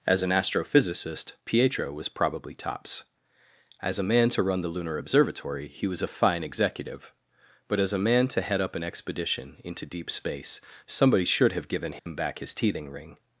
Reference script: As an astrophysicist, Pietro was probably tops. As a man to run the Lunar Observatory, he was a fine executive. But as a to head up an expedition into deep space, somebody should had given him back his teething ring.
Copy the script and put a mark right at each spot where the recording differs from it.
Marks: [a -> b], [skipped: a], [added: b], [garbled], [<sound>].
As an astrophysicist, Pietro was probably tops. As a man to run the Lunar Observatory, he was a fine executive. But as a [added: man] to head up an expedition into deep space, somebody should [had -> have] given him [dropout] back his teething ring.